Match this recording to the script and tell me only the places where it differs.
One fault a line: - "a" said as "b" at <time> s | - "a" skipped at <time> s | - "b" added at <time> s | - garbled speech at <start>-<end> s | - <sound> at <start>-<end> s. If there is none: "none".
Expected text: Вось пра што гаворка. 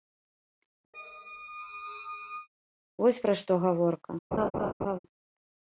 - squeak at 0.9-2.5 s
- laugh at 4.3-5.0 s